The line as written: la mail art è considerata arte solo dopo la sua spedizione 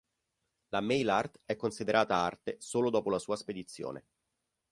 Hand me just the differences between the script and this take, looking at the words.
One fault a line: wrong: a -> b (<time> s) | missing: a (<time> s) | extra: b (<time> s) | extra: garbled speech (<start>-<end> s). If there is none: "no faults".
no faults